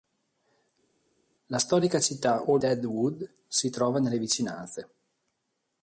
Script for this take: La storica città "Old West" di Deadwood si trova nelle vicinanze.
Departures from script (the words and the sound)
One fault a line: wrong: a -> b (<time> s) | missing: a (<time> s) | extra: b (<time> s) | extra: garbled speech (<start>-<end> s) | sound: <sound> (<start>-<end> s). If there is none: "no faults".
missing: West di (2.6 s)